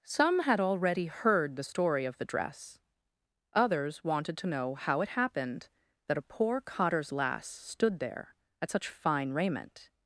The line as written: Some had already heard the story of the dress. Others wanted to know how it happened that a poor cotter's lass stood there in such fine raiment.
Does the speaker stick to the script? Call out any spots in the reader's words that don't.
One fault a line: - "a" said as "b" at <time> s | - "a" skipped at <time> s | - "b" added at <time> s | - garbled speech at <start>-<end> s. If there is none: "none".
- "in" said as "at" at 8.6 s